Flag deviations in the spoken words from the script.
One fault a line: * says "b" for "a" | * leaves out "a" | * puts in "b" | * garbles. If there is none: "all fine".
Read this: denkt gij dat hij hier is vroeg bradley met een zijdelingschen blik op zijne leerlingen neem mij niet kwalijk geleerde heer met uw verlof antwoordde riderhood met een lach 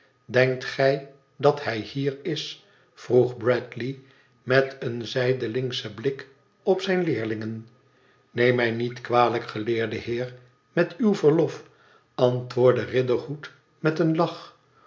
all fine